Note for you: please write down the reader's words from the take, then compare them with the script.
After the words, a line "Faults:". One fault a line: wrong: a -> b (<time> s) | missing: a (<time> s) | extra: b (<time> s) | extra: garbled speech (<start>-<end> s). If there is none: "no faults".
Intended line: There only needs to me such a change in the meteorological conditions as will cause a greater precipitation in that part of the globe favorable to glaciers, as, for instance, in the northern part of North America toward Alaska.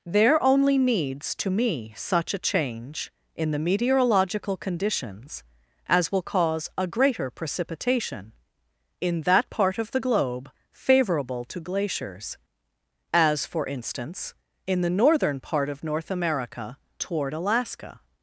There only needs to me such a change in the meteorological conditions as will cause a greater precipitation in that part of the globe favorable to glaciers, as, for instance, in the northern part of North America toward Alaska.
Faults:
no faults